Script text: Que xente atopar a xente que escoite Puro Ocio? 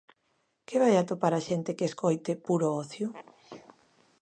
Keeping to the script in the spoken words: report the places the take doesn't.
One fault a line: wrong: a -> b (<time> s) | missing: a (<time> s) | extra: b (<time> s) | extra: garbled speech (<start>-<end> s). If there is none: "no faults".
wrong: xente -> vai (0.8 s)